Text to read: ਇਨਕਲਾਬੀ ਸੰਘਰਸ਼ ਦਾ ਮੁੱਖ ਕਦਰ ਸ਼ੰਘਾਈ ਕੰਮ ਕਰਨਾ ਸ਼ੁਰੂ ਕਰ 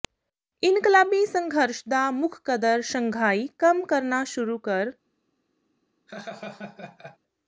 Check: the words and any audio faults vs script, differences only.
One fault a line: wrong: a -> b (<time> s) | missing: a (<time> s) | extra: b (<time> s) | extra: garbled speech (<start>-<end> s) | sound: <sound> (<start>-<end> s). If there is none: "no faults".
sound: laugh (6.1-7.2 s)